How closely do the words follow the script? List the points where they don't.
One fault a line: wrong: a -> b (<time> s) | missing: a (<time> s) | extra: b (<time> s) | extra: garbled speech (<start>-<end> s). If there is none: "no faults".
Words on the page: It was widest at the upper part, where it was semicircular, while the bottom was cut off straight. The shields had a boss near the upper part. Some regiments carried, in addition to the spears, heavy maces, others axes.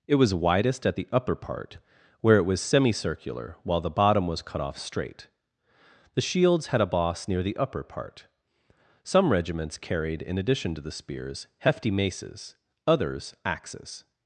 wrong: heavy -> hefty (11.6 s)